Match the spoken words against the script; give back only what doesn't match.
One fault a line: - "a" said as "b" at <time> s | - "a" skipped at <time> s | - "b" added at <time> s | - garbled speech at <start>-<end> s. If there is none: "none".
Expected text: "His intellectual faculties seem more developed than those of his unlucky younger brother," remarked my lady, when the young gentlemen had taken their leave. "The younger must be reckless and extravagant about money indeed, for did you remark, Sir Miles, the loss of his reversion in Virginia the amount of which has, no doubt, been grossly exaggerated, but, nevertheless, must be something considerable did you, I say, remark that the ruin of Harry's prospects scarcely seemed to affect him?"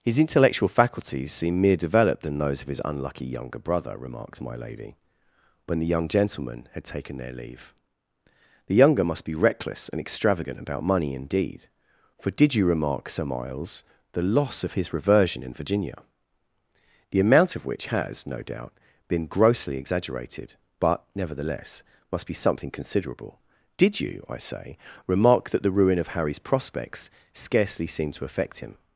- "more" said as "mere" at 1.6 s